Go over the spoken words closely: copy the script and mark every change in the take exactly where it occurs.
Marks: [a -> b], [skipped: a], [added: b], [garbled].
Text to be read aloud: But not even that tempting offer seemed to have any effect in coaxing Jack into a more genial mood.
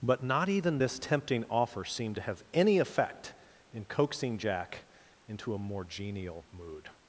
But not even [that -> this] tempting offer seemed to have any effect in coaxing Jack into a more genial mood.